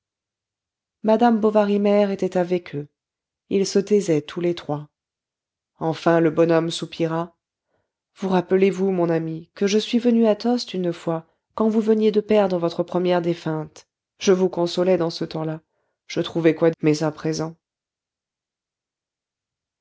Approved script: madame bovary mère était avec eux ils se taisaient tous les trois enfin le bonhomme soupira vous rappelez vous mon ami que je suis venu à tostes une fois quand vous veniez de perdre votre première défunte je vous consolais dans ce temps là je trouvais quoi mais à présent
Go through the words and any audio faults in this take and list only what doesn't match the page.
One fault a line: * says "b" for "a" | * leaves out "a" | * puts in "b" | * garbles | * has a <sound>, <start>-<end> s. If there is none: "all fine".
all fine